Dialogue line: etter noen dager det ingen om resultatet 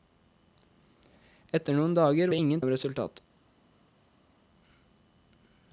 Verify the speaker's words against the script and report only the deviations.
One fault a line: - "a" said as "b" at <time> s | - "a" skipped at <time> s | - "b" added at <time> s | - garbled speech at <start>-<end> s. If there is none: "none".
none